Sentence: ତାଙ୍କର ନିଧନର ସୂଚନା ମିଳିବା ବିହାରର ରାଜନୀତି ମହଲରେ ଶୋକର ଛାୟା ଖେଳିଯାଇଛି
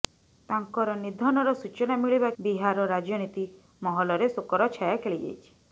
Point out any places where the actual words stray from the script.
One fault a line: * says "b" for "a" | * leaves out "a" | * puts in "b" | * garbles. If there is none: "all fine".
all fine